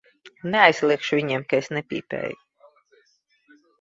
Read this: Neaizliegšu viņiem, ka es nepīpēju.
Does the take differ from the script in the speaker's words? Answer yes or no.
no